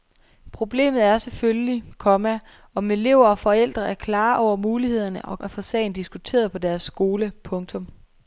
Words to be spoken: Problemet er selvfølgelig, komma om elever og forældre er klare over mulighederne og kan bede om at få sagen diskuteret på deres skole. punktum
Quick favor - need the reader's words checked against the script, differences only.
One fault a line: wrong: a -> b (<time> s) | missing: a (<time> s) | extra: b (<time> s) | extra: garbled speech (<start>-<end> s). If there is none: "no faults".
missing: kan bede om (5.4 s)